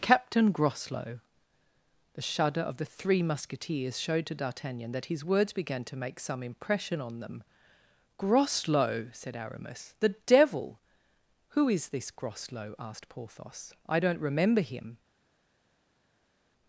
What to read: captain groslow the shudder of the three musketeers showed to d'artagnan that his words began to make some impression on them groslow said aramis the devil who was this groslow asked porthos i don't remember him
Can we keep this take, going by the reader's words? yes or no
no